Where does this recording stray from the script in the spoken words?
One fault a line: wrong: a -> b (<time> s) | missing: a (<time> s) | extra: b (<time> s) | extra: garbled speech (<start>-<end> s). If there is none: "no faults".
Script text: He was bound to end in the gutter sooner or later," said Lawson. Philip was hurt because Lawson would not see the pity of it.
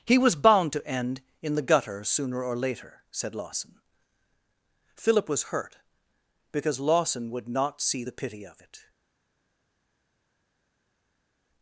no faults